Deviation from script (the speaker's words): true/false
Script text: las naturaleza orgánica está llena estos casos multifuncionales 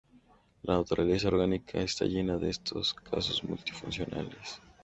true